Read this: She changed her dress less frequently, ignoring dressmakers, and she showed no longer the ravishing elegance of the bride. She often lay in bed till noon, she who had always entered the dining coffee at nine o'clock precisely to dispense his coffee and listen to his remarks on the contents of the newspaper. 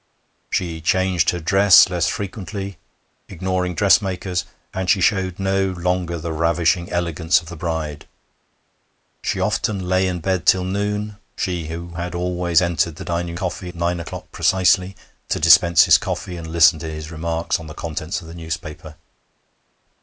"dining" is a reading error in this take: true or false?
false